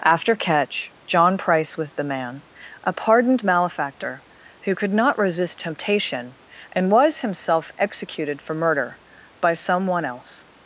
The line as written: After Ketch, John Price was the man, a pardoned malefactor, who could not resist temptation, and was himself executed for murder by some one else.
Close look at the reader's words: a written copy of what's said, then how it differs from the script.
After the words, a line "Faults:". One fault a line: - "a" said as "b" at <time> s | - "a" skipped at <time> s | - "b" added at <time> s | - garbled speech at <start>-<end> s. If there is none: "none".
After Ketch, John Price was the man, a pardoned malefactor, who could not resist temptation, and was himself executed for murder by some one else.
Faults:
none